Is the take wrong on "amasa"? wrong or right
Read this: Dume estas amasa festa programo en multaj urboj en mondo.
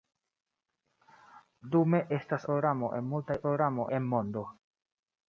wrong